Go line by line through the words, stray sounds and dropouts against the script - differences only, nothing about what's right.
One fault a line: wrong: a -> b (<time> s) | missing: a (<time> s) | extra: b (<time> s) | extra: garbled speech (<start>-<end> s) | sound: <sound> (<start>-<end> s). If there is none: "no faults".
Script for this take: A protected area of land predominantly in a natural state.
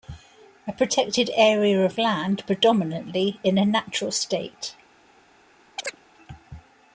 sound: chirp (5.8-6.0 s)